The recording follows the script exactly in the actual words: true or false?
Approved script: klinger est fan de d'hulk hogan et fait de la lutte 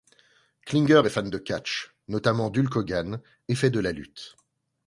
false